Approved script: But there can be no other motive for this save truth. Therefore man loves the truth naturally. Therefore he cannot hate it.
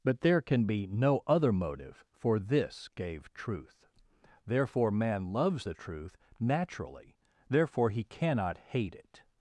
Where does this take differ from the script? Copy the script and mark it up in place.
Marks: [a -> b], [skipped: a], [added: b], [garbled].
But there can be no other motive for this [save -> gave] truth. Therefore man loves the truth naturally. Therefore he cannot hate it.